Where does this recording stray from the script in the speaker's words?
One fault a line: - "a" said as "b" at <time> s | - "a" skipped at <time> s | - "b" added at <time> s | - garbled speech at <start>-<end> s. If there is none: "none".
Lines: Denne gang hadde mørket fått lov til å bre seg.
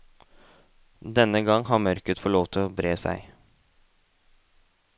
- "hadde" said as "har" at 1.7 s